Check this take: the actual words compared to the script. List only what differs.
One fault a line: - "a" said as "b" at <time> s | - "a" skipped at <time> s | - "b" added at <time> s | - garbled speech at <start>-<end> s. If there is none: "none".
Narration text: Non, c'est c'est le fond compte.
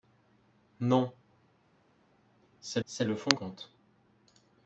none